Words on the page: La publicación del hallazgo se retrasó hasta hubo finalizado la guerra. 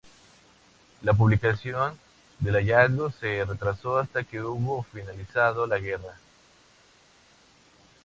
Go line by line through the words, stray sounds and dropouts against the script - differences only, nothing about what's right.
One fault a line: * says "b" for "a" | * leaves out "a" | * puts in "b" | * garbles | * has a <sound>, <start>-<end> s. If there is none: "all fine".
* puts in "que"